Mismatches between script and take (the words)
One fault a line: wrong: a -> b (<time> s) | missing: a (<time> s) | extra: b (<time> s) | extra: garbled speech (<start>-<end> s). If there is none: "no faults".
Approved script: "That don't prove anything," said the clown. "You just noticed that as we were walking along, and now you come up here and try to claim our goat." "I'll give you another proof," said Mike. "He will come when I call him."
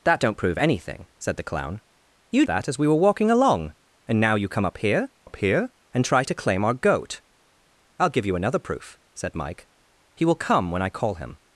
missing: just noticed (2.5 s)
extra: up here (5.2 s)